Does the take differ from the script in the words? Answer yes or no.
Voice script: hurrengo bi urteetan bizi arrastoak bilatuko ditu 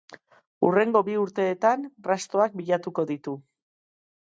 yes